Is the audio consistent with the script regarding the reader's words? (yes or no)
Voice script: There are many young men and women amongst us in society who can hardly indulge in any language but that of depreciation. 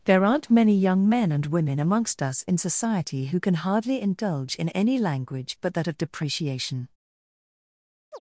no